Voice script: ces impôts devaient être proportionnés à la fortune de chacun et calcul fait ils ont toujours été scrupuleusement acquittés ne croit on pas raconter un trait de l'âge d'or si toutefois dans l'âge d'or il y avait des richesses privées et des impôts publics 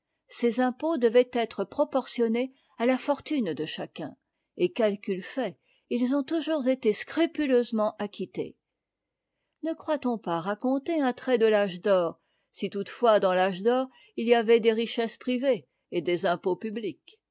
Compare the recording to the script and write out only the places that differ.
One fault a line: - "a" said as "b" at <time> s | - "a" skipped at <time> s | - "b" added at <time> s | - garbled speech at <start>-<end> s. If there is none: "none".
none